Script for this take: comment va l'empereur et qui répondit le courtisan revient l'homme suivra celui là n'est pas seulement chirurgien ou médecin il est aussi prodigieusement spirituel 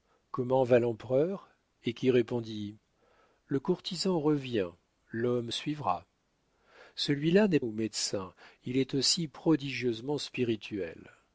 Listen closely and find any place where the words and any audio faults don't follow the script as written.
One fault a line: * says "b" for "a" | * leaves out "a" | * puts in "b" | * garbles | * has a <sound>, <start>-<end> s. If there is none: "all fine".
* leaves out "pas seulement chirurgien"